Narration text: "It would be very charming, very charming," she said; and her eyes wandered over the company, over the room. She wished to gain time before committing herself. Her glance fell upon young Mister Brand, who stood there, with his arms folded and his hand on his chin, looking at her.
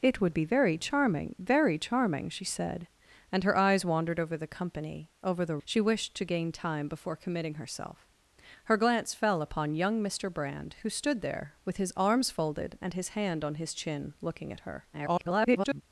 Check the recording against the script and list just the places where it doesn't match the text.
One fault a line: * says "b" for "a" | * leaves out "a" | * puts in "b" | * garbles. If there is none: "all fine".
* leaves out "room"
* garbles